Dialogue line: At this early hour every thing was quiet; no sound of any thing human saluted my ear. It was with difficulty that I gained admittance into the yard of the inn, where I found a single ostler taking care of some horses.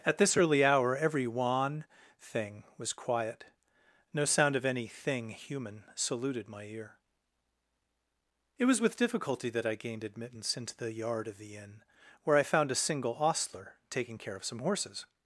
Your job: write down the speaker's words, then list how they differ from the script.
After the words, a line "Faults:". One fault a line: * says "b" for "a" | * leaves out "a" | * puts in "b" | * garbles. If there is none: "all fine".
At this early hour every wan thing was quiet; no sound of any thing human saluted my ear. It was with difficulty that I gained admittance into the yard of the inn, where I found a single ostler taking care of some horses.
Faults:
* puts in "wan"